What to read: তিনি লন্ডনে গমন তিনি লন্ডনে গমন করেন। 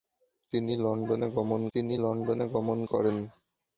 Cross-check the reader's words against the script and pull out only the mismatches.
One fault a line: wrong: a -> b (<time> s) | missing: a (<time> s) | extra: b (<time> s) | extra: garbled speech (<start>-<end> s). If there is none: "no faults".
no faults